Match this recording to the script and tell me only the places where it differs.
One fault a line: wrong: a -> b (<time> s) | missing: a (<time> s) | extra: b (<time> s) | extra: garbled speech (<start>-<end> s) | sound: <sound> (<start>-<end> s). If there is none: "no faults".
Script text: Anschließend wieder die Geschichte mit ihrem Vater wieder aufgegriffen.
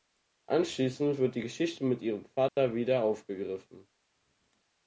wrong: wieder -> wird (1.2 s)
sound: dropout (2.5-2.6 s)